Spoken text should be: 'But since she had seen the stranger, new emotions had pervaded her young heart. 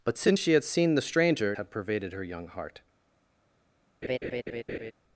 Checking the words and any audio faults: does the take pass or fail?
fail